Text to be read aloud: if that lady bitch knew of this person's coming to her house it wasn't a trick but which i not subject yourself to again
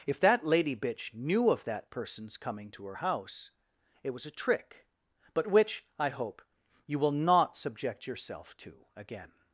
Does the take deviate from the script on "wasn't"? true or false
true